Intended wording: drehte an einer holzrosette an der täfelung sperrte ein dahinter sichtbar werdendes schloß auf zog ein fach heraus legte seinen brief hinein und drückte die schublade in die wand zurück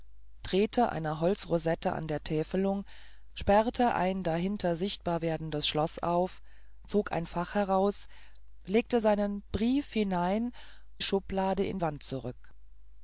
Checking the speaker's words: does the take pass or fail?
fail